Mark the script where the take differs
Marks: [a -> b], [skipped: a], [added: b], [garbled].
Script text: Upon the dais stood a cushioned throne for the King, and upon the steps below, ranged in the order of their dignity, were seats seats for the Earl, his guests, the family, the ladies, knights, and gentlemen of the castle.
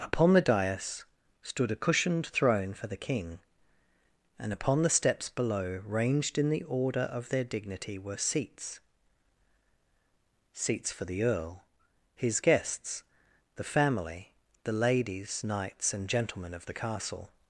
Upon the dais stood a cushioned throne for the King, and upon the steps below, ranged in the order of their dignity, were seats seats for the Earl, his guests, the family, the ladies, knights, and gentlemen of the castle.